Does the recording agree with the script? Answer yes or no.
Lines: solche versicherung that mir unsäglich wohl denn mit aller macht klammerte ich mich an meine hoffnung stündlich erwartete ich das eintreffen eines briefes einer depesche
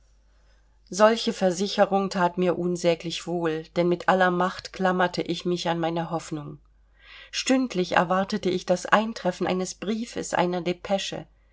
yes